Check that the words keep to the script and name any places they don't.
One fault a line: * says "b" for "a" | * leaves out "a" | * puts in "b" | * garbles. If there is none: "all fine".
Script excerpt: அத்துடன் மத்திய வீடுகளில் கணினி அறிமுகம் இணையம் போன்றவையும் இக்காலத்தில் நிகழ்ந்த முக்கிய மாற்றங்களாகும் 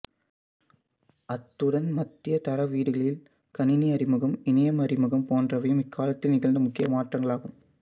* puts in "தர"
* puts in "அறிமுகம்"